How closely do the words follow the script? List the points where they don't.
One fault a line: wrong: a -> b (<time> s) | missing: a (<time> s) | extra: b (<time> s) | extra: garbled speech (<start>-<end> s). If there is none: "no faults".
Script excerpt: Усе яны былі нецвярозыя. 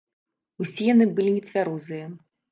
no faults